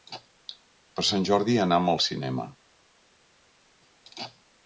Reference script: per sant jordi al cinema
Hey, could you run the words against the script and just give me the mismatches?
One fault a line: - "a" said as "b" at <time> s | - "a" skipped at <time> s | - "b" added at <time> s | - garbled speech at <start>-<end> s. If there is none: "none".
- "anam" added at 1.7 s